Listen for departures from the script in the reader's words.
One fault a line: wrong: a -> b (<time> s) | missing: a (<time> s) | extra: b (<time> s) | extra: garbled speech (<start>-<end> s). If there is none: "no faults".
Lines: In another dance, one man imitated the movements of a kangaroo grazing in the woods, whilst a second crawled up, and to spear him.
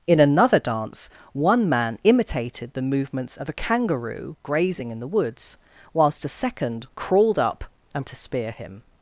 no faults